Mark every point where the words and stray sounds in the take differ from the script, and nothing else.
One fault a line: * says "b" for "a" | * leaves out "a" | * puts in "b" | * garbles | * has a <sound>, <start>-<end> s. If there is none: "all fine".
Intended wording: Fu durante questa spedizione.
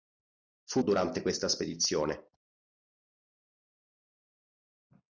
all fine